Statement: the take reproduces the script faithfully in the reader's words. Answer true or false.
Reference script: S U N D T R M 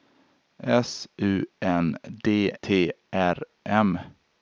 true